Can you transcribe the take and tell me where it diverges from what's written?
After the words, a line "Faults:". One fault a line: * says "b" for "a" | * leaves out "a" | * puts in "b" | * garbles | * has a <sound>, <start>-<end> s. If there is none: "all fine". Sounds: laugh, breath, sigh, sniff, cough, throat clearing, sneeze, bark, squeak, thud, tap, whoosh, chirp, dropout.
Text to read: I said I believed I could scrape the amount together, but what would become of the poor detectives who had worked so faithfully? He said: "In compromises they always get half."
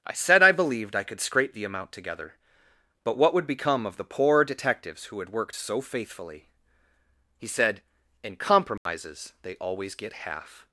I said I believed I could scrape the amount together, but what would become of the poor detectives who had worked so faithfully? He said: "In compromises they always get half."
Faults:
* has a dropout, 8.8-8.9 s